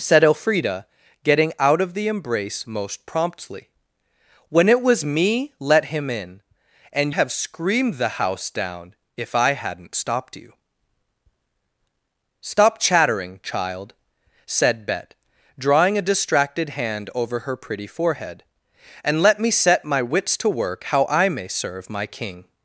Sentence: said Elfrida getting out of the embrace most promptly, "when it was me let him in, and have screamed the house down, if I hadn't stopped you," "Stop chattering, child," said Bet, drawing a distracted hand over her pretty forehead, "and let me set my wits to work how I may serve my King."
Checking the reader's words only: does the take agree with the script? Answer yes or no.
yes